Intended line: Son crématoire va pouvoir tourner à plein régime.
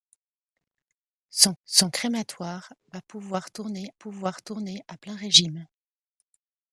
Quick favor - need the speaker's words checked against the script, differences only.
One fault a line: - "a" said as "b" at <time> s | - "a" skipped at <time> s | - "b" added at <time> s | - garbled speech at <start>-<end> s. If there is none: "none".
- "son" added at 1.6 s
- "pouvoir tourner" added at 3.9 s